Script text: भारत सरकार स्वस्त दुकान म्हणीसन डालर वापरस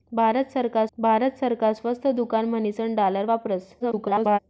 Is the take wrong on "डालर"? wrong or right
right